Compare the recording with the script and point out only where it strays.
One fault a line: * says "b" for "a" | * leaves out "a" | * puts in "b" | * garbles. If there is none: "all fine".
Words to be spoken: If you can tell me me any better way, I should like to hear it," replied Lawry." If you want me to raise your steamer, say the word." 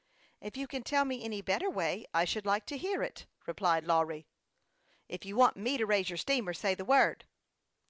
* leaves out "me"